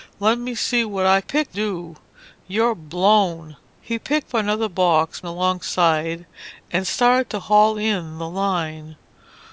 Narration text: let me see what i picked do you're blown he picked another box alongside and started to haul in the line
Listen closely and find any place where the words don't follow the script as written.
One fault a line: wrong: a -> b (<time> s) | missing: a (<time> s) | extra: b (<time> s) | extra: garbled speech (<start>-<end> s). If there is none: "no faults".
no faults